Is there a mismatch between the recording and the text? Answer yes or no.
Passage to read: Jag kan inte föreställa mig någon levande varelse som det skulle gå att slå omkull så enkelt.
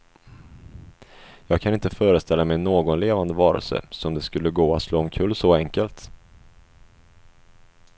no